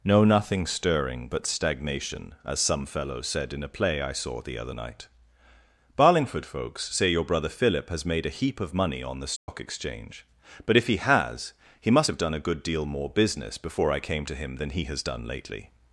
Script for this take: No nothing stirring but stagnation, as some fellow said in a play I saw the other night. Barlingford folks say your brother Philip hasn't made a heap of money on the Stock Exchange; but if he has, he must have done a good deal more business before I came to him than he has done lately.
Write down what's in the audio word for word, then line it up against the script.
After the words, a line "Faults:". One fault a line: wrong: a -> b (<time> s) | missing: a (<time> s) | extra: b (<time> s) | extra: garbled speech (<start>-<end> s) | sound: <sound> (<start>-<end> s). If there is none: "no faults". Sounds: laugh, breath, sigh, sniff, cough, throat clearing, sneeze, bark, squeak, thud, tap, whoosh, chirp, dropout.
No nothing stirring but stagnation, as some fellow said in a play I saw the other night. Barlingford folks say your brother Philip has made a heap of money on the Stock Exchange; but if he has, he must have done a good deal more business before I came to him than he has done lately.
Faults:
wrong: hasn't -> has (7.9 s)
sound: dropout (9.4-9.5 s)